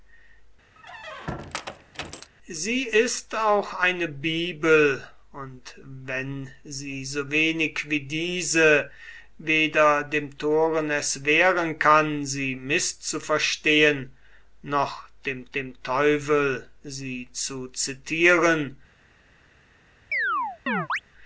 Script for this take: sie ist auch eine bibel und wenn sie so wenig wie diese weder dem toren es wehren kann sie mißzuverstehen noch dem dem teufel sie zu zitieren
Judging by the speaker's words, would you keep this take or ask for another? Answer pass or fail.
pass